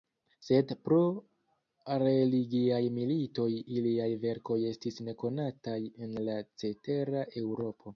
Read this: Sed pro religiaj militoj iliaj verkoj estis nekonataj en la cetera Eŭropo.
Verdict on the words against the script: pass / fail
pass